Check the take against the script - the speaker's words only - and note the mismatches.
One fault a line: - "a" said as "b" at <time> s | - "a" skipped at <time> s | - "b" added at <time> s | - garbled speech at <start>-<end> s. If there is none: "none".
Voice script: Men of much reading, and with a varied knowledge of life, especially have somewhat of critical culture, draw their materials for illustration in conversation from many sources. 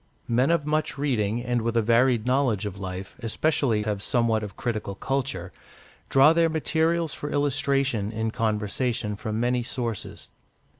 none